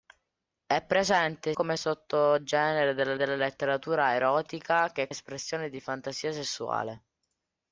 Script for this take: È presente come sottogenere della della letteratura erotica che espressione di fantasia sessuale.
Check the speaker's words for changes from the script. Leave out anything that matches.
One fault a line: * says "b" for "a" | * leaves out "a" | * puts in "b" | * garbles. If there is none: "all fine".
all fine